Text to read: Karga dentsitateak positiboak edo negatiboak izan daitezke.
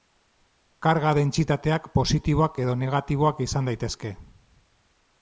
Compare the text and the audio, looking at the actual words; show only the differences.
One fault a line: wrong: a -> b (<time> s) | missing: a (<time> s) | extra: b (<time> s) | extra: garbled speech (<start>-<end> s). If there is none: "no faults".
no faults